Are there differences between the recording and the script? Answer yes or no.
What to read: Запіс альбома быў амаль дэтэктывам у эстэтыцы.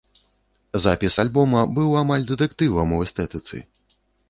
no